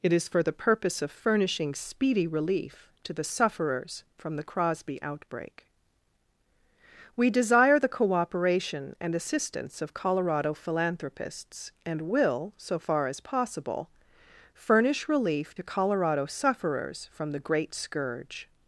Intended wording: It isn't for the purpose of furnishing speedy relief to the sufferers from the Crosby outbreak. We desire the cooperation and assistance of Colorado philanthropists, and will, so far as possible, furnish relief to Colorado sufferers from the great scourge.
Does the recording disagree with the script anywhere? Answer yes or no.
yes